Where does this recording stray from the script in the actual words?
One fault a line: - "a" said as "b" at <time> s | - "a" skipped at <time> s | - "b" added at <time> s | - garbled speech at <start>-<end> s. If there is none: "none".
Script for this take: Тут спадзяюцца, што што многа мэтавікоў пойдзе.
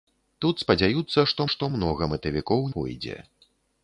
none